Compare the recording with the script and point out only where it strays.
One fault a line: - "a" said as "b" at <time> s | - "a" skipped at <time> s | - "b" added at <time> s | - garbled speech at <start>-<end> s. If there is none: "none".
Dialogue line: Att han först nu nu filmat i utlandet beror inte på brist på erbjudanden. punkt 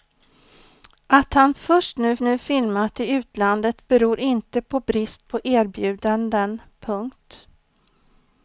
none